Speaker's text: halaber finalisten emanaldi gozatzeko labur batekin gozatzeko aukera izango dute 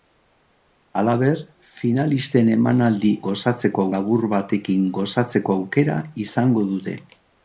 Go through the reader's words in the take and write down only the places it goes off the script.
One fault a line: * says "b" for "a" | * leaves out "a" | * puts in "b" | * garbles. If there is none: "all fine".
all fine